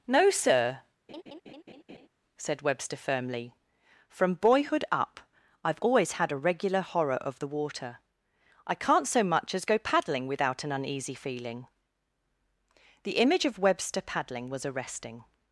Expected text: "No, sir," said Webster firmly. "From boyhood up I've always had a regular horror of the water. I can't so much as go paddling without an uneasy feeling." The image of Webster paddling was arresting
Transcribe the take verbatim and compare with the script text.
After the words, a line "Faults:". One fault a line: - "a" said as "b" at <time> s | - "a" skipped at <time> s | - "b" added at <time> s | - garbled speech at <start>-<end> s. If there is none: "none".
"No, sir," said Webster firmly. "From boyhood up I've always had a regular horror of the water. I can't so much as go paddling without an uneasy feeling." The image of Webster paddling was arresting
Faults:
none